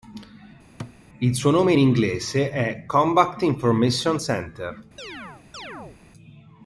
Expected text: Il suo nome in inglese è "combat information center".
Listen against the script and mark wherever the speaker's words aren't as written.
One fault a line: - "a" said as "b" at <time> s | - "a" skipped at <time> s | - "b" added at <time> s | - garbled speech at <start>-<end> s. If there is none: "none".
none